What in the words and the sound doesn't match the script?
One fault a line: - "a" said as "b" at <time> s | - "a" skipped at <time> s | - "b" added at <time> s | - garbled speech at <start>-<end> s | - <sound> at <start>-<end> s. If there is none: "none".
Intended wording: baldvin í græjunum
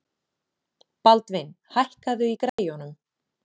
- "hækkaðu" added at 1.8 s
- dropout at 2.5-2.6 s